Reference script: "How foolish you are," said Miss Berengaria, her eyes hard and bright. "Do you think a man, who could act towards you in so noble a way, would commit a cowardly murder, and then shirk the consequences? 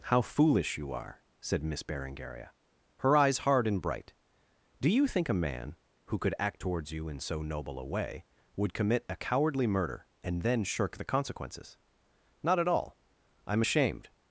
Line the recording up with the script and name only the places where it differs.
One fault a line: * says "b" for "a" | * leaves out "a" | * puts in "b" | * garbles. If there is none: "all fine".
* puts in "Not at all I'm ashamed"